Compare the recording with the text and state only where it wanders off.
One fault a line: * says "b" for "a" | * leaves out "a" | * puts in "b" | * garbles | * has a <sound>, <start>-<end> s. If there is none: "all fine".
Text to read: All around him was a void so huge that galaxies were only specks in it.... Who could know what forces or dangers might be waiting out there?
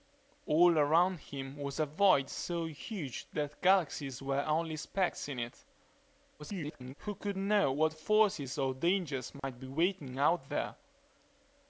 * garbles
* has a dropout, 9.4-9.4 s